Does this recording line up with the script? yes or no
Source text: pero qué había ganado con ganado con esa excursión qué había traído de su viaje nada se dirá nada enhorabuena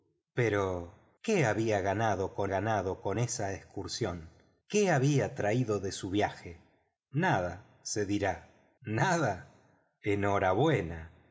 yes